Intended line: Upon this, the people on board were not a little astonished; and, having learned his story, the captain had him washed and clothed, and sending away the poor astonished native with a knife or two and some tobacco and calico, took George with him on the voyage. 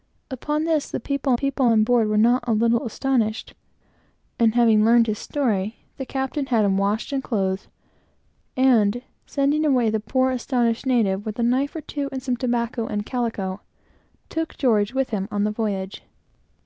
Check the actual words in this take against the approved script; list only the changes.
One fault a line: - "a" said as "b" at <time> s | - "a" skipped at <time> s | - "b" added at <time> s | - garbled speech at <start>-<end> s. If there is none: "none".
- "people" added at 1.3 s